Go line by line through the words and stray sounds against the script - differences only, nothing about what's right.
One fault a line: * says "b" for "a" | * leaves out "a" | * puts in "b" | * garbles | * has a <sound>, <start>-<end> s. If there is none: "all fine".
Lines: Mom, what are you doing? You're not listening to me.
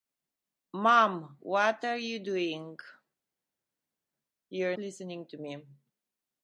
* leaves out "not"